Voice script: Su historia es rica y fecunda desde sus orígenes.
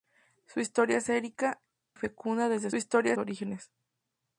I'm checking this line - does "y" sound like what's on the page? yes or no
no